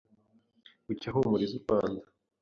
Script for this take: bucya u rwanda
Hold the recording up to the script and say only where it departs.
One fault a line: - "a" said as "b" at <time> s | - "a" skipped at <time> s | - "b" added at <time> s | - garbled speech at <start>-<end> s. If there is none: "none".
- "ahumuriza" added at 1.1 s